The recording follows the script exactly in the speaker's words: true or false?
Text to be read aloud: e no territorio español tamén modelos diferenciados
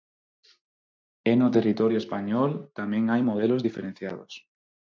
false